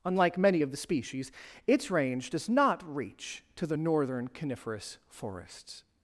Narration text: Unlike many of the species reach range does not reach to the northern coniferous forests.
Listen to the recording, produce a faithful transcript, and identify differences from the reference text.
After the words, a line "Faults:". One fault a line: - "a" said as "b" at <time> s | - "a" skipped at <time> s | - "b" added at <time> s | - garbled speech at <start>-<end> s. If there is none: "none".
Unlike many of the species its range does not reach to the northern coniferous forests.
Faults:
- "reach" said as "its" at 1.7 s